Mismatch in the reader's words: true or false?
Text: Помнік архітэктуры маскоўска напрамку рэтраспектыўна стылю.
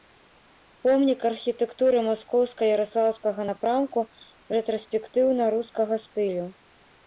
true